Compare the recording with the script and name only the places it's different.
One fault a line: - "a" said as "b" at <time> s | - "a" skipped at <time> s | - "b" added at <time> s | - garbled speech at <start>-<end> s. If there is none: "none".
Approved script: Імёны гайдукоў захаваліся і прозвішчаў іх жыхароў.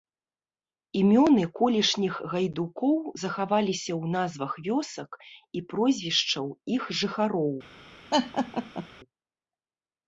- "колішніх" added at 1.6 s
- "ў назвах вёсак" added at 4.0 s